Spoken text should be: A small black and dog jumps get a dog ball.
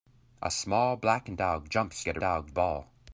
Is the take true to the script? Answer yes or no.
yes